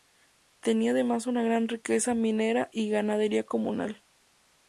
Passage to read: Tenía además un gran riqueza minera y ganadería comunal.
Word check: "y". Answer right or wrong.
right